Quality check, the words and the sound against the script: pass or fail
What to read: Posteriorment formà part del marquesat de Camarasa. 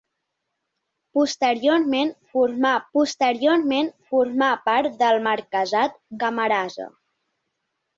fail